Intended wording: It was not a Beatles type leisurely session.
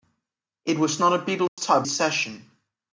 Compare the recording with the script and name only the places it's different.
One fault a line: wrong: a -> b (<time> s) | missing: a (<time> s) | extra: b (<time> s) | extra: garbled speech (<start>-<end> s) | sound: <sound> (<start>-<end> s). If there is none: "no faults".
sound: dropout (1.5-1.6 s)
missing: leisurely (1.9 s)